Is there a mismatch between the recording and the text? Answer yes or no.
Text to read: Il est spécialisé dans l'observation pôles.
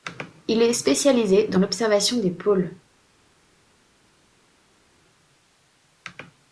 yes